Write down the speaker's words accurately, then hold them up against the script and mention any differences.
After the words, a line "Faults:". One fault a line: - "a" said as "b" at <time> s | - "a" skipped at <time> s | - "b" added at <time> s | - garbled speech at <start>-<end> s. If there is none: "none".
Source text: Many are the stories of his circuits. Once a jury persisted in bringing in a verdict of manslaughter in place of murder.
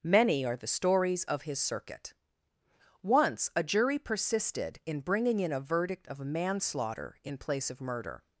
Many are the stories of his circuit. Once a jury persisted in bringing in a verdict of manslaughter in place of murder.
Faults:
- "circuits" said as "circuit" at 1.6 s